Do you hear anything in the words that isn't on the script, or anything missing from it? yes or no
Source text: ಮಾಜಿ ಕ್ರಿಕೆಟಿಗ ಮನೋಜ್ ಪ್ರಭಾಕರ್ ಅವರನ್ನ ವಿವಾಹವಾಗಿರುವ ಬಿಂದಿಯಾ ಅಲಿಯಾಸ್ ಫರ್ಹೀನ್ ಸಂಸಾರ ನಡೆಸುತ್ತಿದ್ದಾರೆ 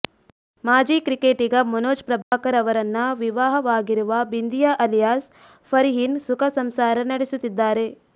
yes